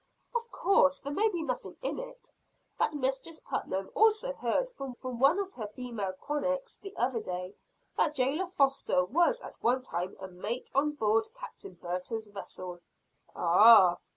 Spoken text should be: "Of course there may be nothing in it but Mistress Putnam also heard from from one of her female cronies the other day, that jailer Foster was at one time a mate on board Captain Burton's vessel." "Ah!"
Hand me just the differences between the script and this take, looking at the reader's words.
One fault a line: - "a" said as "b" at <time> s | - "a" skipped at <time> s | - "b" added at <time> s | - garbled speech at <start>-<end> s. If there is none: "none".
none